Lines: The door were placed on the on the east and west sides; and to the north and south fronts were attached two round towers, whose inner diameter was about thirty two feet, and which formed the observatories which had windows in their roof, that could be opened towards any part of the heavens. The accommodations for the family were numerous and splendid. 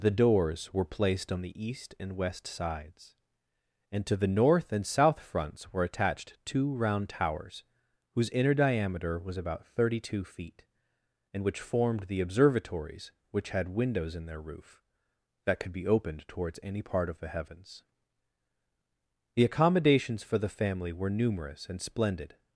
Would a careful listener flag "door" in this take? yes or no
yes